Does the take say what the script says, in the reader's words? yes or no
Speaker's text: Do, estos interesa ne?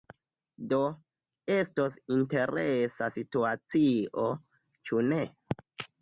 no